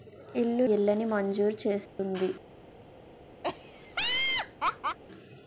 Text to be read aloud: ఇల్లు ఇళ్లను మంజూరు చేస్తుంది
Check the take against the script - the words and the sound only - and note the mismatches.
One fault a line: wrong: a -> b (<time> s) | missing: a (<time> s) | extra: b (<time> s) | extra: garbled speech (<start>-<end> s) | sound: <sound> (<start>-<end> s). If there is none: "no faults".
sound: dropout (1.9-2.0 s)
sound: laugh (3.4-5.0 s)